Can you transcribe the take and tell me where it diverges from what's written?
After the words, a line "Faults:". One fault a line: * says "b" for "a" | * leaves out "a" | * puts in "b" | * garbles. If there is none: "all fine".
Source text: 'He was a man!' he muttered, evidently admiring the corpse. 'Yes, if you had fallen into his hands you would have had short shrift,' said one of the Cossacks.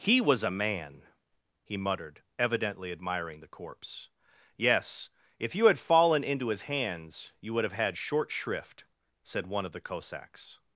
'He was a man!' he muttered, evidently admiring the corpse. 'Yes, if you had fallen into his hands you would have had short shrift,' said one of the Cossacks.
Faults:
all fine